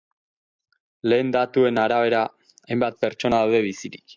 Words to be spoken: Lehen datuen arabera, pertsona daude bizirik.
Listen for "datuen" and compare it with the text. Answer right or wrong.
right